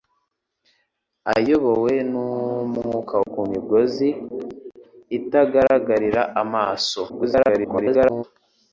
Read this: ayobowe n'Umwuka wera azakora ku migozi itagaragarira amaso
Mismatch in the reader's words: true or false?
true